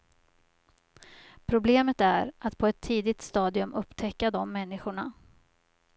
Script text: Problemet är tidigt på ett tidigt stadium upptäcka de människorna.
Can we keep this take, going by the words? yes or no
no